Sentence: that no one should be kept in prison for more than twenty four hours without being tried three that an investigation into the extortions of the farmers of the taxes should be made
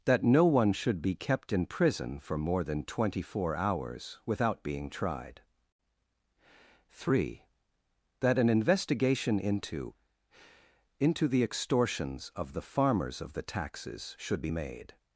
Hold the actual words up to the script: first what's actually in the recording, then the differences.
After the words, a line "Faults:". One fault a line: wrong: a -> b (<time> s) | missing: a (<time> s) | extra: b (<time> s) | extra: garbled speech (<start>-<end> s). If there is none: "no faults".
that no one should be kept in prison for more than twenty four hours without being tried three that an investigation into into the extortions of the farmers of the taxes should be made
Faults:
extra: into (11.0 s)